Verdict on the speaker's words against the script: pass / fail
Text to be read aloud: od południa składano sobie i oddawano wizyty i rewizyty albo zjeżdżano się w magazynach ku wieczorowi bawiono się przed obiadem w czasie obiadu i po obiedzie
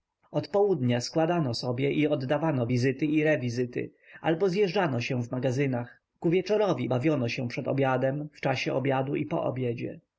pass